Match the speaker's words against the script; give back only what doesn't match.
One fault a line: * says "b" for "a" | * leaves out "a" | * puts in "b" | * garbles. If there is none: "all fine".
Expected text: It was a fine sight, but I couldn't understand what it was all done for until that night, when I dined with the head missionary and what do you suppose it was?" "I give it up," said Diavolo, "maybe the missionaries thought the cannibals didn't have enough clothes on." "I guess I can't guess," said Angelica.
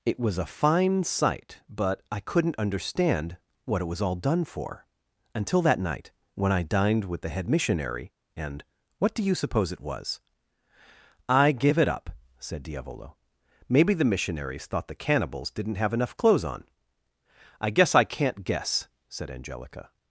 all fine